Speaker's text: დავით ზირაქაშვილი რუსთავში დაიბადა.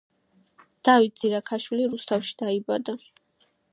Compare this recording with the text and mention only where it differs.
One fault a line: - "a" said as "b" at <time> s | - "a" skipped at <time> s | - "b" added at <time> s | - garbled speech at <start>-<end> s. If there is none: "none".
none